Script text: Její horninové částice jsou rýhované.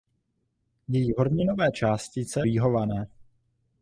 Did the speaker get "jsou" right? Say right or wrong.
wrong